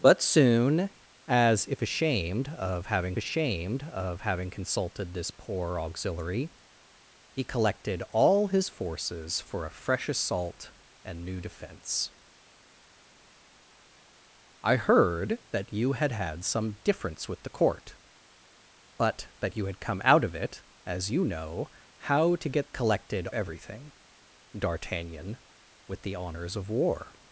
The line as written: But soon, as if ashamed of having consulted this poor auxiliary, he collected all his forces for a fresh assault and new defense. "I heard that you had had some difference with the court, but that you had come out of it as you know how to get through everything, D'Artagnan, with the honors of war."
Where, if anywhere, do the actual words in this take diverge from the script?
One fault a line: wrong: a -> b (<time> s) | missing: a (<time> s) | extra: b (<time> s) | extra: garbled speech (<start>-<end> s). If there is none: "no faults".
extra: ashamed of having (3.2 s)
wrong: through -> collected (22.7 s)